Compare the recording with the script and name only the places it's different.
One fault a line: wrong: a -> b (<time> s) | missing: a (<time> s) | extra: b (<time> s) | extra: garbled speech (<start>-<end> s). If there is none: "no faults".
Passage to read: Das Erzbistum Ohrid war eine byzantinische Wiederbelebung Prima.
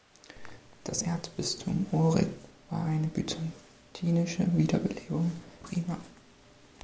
no faults